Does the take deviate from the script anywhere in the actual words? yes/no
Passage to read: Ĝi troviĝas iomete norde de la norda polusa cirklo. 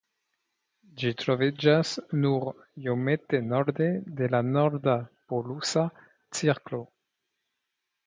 yes